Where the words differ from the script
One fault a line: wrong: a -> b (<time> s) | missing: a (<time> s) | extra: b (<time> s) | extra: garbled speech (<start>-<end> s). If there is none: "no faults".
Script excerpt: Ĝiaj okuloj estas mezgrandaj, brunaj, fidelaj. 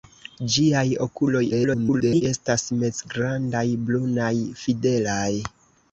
extra: garbled speech (1.5-2.2 s)